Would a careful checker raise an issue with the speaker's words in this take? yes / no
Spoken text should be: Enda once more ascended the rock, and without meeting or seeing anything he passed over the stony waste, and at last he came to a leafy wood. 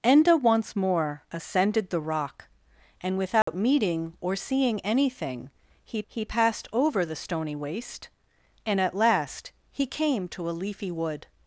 yes